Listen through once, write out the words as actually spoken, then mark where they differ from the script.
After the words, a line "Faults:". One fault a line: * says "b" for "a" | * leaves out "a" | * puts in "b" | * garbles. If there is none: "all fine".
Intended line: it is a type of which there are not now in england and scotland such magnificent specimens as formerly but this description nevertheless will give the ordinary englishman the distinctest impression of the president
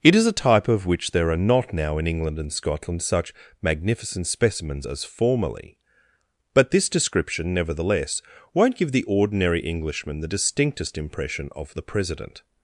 it is a type of which there are not now in england and scotland such magnificent specimens as formerly but this description nevertheless won't give the ordinary englishman the distinctest impression of the president
Faults:
* says "won't" for "will"